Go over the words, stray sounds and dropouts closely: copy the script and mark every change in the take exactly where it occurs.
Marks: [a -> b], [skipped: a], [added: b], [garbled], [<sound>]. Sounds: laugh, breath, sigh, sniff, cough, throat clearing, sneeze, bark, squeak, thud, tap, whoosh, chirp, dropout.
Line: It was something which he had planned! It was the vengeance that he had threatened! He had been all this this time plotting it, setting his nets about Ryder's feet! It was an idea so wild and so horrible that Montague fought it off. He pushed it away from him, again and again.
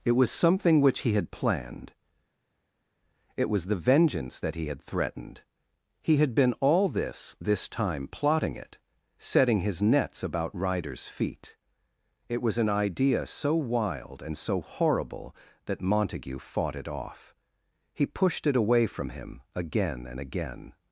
It was something which he had planned! It was the vengeance that he had threatened! He had been all this this time plotting it, setting his nets about Ryder's feet! It was an idea so wild and so horrible that Montague fought it off. He pushed it away from him, again and again.